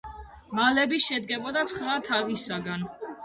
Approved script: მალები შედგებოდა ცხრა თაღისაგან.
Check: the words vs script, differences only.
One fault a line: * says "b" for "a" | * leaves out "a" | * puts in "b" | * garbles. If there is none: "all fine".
all fine